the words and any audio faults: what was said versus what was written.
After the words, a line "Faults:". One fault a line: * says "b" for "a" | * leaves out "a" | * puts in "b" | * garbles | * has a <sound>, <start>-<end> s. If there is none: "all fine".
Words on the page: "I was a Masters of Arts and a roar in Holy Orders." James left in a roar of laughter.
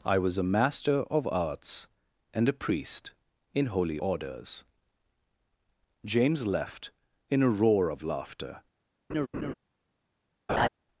"I was a Master of Arts and a priest in Holy Orders." James left in a roar of laughter.
Faults:
* says "Master" for "Masters"
* says "priest" for "roar"
* has a laugh, 9.1-9.5 s
* has a laugh, 10.5-10.7 s